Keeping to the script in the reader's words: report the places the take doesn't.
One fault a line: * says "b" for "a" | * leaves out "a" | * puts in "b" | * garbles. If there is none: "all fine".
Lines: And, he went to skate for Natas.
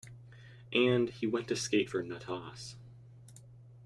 all fine